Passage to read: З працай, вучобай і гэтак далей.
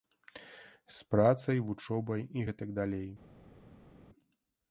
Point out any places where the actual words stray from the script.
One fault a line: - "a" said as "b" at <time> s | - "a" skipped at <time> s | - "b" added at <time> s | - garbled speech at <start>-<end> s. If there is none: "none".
none